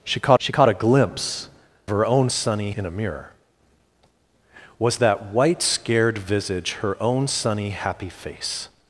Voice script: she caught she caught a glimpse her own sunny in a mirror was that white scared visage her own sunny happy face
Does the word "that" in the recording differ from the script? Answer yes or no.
no